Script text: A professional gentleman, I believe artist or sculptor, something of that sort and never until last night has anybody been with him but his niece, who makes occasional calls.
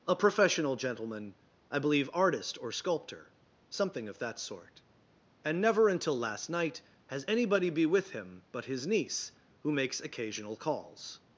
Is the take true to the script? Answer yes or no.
no